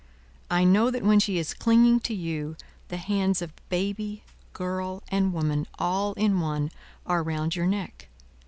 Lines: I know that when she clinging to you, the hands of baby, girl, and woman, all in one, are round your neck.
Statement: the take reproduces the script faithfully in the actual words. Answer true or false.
false